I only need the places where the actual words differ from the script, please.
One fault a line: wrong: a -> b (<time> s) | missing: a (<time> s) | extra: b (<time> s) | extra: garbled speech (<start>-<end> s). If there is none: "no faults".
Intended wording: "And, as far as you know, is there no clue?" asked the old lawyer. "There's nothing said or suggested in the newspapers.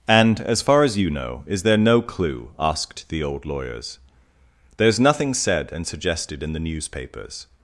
wrong: lawyer -> lawyers (3.5 s)
wrong: or -> and (5.7 s)